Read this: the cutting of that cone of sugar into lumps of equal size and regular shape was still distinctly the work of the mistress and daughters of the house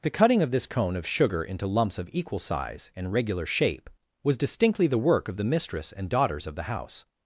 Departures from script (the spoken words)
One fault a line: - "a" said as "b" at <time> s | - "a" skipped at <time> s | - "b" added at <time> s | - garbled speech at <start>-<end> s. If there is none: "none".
- "that" said as "this" at 0.5 s
- "still" skipped at 4.3 s